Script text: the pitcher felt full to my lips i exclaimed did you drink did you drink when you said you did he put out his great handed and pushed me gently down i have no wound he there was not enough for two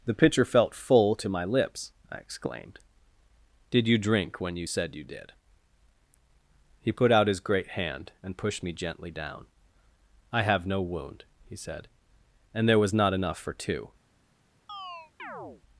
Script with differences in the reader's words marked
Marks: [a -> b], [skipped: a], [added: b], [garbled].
the pitcher felt full to my lips i exclaimed did you drink [skipped: did you drink] when you said you did he put out his great [handed -> hand] and pushed me gently down i have no wound he [added: said and] there was not enough for two